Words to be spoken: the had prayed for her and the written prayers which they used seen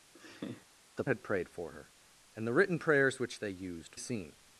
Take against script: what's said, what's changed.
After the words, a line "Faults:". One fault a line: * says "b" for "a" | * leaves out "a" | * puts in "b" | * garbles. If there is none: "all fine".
the had prayed for her and the written prayers which they used seen
Faults:
all fine